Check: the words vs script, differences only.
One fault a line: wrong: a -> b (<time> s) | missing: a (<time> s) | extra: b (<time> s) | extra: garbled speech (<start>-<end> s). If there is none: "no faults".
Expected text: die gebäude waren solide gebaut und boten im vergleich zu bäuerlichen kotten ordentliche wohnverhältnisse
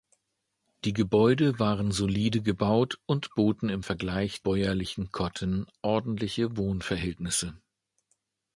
missing: zu (4.4 s)